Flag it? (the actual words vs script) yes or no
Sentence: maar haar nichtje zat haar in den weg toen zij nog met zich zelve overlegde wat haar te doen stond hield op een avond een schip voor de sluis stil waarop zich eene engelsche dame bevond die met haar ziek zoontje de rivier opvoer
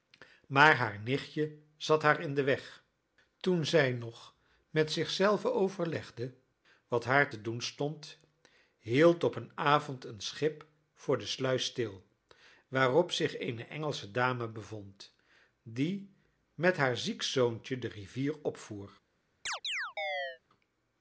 no